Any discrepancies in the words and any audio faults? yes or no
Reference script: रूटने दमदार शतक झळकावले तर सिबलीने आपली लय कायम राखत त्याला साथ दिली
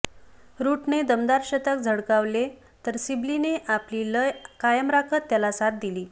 no